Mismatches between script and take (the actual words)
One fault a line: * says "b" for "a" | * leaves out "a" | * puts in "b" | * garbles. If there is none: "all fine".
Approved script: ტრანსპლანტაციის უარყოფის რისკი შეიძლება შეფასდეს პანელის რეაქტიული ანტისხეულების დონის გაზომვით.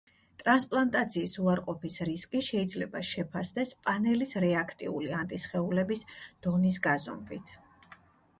all fine